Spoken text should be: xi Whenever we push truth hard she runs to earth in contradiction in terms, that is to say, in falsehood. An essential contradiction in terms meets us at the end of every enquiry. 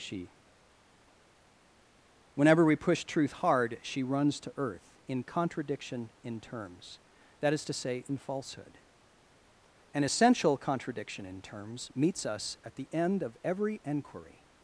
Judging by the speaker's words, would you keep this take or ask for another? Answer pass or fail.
fail